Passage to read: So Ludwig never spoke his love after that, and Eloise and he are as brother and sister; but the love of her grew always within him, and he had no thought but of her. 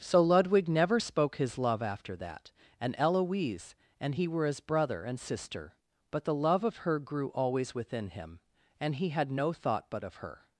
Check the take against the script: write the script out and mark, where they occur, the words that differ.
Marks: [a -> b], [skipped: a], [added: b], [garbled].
So Ludwig never spoke his love after that, and Eloise and he [are -> were] as brother and sister; but the love of her grew always within him, and he had no thought but of her.